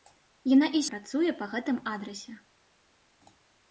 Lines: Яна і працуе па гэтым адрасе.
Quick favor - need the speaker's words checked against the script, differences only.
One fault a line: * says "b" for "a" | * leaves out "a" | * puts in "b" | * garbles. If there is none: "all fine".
all fine